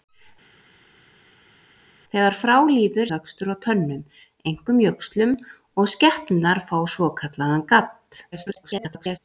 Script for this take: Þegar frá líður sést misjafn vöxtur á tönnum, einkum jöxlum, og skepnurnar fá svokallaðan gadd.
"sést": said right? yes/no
no